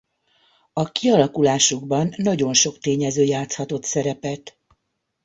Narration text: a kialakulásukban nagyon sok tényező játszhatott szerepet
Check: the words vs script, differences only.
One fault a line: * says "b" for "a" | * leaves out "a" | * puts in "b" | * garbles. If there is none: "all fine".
all fine